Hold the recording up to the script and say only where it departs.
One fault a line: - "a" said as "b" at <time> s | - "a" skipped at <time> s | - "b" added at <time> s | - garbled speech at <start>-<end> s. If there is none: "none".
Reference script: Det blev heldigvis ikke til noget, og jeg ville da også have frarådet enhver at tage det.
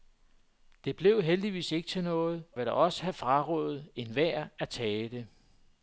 - "og jeg" skipped at 2.4 s